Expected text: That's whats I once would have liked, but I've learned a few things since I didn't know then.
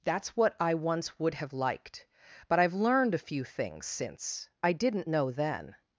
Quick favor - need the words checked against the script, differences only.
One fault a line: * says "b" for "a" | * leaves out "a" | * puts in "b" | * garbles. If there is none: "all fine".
* says "what" for "whats"